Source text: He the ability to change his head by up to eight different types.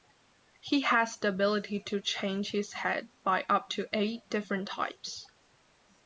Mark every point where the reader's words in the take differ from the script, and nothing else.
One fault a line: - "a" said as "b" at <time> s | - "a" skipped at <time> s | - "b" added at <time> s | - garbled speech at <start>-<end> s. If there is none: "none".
- "has" added at 0.8 s